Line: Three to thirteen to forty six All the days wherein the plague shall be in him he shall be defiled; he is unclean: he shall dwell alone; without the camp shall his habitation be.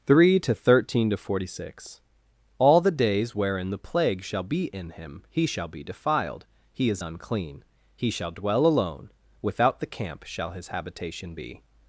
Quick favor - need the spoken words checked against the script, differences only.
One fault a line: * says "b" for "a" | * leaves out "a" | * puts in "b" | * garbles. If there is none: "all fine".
all fine